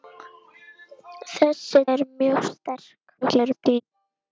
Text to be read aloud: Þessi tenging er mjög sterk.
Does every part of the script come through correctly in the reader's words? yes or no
no